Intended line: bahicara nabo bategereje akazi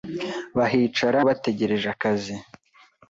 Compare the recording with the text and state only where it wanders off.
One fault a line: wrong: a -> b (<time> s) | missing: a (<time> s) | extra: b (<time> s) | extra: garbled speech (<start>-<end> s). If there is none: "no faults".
missing: nabo (1.2 s)